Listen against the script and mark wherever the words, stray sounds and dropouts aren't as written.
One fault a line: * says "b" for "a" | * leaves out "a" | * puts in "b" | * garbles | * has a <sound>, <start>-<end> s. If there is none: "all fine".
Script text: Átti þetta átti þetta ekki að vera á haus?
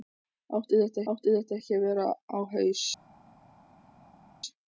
all fine